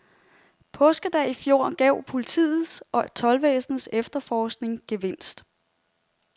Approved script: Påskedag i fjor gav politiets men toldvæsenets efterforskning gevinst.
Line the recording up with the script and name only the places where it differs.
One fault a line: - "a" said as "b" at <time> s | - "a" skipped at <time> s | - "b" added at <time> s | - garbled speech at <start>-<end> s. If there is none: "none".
- "men" said as "og" at 2.9 s